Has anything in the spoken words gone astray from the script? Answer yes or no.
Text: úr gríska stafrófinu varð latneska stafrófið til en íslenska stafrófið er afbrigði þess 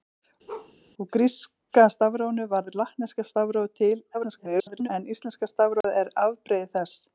yes